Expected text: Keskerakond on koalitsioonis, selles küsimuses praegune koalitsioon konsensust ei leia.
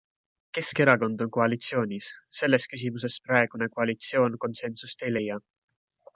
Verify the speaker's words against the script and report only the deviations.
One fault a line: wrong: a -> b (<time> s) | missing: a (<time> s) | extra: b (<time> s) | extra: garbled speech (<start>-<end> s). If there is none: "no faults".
no faults